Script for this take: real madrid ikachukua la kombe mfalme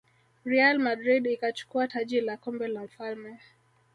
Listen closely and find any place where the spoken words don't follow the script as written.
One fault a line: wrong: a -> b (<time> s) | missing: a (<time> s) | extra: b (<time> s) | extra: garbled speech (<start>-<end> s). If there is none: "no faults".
extra: taji (1.8 s)
extra: la (2.7 s)